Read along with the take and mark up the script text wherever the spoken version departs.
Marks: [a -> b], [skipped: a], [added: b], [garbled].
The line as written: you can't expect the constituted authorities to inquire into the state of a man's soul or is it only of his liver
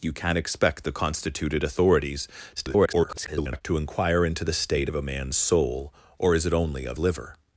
you can't expect the constituted authorities [garbled] to inquire into the state of a man's soul or is it only of [skipped: his] liver